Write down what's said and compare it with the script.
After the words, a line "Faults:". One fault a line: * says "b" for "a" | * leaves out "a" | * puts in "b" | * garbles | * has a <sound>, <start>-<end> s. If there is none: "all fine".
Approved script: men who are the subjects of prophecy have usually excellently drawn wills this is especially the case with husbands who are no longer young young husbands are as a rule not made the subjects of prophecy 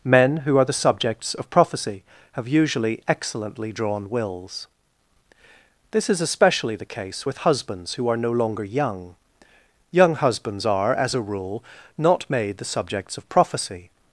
men who are the subjects of prophecy have usually excellently drawn wills this is especially the case with husbands who are no longer young young husbands are as a rule not made the subjects of prophecy
Faults:
all fine